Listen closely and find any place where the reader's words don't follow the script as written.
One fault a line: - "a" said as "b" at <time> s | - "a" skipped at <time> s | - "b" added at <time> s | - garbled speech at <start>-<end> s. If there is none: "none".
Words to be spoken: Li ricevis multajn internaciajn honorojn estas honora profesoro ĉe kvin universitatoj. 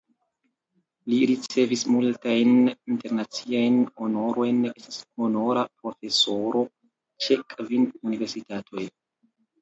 none